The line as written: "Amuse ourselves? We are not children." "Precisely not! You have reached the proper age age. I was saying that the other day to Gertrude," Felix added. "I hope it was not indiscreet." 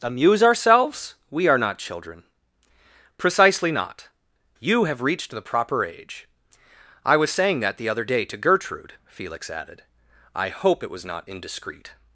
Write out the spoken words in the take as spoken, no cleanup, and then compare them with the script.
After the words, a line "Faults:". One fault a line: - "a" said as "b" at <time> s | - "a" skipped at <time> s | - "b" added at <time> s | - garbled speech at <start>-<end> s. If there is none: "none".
"Amuse ourselves? We are not children." "Precisely not! You have reached the proper age. I was saying that the other day to Gertrude," Felix added. "I hope it was not indiscreet."
Faults:
- "age" skipped at 6.3 s